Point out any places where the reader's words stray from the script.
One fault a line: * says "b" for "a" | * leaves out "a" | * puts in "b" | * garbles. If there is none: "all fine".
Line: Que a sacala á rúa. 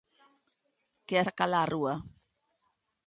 all fine